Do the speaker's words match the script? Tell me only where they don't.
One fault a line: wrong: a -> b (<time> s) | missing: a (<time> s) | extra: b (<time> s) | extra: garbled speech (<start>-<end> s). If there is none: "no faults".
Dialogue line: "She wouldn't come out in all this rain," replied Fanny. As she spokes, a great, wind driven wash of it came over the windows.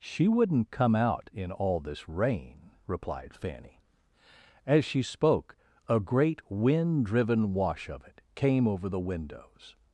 wrong: spokes -> spoke (5.0 s)